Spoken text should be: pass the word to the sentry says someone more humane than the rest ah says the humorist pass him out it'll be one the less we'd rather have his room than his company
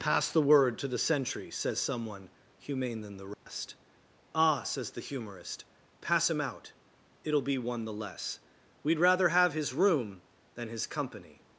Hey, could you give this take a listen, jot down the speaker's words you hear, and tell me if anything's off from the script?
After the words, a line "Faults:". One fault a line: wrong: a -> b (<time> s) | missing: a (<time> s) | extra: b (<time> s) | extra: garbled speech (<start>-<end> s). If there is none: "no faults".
pass the word to the sentry says someone humane than the rest ah says the humorist pass him out it'll be one the less we'd rather have his room than his company
Faults:
missing: more (2.3 s)